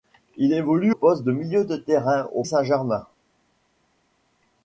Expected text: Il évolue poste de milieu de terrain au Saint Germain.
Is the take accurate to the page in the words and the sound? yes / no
yes